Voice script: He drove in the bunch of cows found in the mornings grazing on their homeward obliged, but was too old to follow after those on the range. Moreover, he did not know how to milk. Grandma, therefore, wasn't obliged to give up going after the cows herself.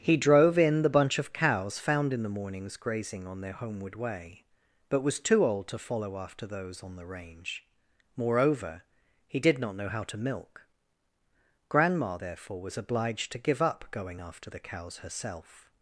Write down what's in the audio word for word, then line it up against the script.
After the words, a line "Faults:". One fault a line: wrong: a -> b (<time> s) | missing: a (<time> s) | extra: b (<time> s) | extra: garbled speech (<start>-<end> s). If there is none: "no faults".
He drove in the bunch of cows found in the mornings grazing on their homeward way, but was too old to follow after those on the range. Moreover, he did not know how to milk. Grandma, therefore, was obliged to give up going after the cows herself.
Faults:
wrong: obliged -> way (3.9 s)
wrong: wasn't -> was (12.6 s)